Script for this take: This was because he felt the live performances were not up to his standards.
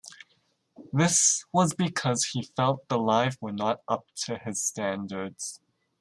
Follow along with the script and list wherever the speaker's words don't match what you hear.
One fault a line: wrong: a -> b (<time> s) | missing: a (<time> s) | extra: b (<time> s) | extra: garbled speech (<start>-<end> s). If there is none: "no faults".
missing: performances (3.4 s)